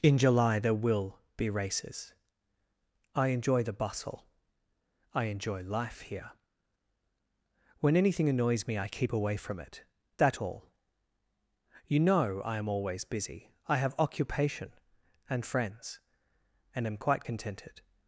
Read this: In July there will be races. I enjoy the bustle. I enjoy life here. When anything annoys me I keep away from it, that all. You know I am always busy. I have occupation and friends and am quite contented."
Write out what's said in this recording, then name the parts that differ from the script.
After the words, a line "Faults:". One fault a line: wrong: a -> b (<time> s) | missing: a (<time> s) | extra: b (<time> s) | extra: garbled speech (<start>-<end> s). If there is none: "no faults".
In July there will be races. I enjoy the bustle. I enjoy life here. When anything annoys me I keep away from it, that all. You know I am always busy. I have occupation and friends and am quite contented."
Faults:
no faults